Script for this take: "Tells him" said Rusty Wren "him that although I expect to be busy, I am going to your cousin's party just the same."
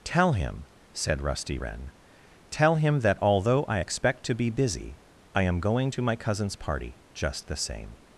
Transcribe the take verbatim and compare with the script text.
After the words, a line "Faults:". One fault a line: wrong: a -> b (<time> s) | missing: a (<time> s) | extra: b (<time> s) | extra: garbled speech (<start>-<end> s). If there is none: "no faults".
"Tell him" said Rusty Wren "tell him that although I expect to be busy, I am going to my cousin's party just the same."
Faults:
wrong: Tells -> Tell (0.0 s)
extra: tell (2.5 s)
wrong: your -> my (6.0 s)